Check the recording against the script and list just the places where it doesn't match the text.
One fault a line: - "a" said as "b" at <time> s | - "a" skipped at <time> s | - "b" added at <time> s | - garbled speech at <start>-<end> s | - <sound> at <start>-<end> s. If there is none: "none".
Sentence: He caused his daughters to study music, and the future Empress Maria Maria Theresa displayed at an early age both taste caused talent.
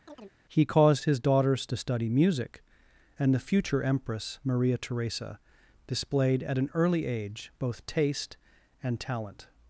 - chirp at 0.1-0.4 s
- "Maria" skipped at 4.8 s
- "caused" said as "and" at 8.8 s